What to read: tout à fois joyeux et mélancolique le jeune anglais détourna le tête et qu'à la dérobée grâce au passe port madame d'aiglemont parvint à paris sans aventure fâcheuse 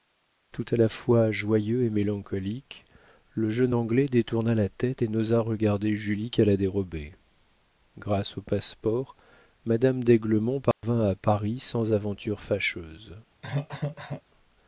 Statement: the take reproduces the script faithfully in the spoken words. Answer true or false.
false